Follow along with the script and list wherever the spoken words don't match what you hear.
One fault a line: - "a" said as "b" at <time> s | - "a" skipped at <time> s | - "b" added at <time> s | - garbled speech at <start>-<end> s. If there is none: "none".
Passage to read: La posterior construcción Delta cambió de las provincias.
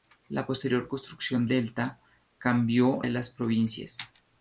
none